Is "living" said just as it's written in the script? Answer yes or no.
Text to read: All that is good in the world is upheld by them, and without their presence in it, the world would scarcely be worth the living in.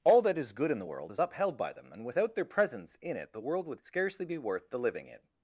yes